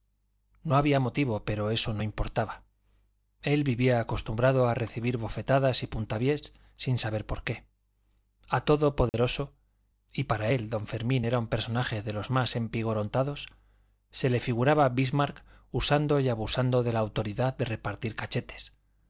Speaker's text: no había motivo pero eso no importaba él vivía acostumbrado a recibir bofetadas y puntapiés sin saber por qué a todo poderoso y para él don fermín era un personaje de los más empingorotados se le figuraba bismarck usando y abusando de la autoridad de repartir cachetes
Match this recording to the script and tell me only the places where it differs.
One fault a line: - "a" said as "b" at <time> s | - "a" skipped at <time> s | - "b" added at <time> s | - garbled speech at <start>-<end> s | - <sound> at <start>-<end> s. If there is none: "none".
- dropout at 9.1-9.1 s